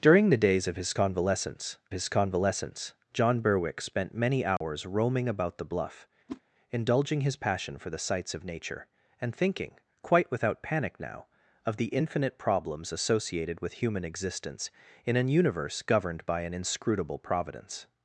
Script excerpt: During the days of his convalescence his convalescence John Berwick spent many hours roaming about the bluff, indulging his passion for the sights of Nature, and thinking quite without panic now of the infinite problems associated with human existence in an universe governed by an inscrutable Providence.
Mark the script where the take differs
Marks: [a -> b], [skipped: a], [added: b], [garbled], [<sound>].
During the days of his convalescence his convalescence John Berwick spent many hours [dropout] roaming about the bluff, [whoosh] indulging his passion for the sights of Nature, and thinking quite without panic now of the infinite problems associated with human existence in an universe governed by an inscrutable Providence.